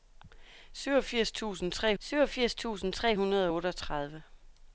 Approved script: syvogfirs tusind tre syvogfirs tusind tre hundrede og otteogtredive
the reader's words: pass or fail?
pass